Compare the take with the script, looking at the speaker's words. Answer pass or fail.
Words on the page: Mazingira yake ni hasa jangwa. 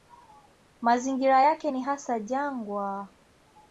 pass